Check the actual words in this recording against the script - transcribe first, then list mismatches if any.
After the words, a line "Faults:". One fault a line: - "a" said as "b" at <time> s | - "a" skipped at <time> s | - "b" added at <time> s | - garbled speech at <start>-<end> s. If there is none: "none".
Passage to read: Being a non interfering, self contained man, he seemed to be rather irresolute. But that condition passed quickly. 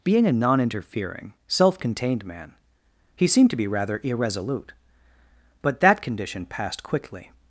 Being a non interfering, self contained man, he seemed to be rather irresolute. But that condition passed quickly.
Faults:
none